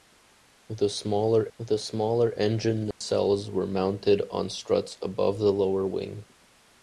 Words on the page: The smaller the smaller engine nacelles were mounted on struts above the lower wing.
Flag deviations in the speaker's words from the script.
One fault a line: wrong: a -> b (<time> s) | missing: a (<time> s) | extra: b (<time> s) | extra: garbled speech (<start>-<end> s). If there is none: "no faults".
no faults